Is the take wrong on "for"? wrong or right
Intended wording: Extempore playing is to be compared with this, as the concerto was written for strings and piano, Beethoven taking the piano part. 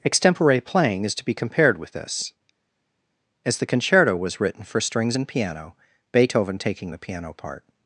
right